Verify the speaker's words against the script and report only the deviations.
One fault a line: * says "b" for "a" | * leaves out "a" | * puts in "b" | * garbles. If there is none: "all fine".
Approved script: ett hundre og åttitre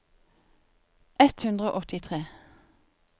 all fine